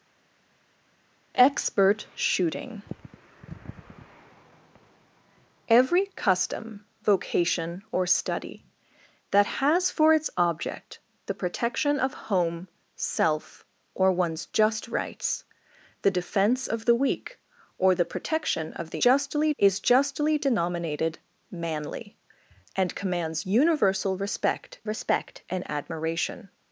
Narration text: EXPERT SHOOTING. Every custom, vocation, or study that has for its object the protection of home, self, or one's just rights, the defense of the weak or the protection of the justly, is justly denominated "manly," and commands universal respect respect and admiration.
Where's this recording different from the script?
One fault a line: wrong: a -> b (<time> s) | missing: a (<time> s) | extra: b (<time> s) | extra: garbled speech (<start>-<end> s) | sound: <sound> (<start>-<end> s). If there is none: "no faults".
no faults